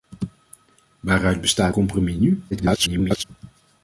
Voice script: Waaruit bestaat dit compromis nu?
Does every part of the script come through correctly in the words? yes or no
no